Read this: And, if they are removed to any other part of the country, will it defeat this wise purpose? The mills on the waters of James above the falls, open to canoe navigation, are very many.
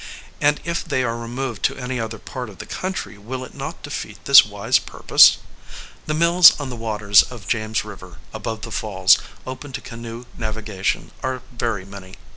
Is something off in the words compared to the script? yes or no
yes